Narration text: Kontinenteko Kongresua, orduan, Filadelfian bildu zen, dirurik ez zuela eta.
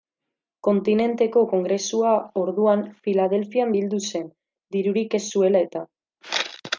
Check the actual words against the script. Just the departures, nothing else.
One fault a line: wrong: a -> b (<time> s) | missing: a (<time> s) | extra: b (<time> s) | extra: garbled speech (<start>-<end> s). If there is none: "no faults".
no faults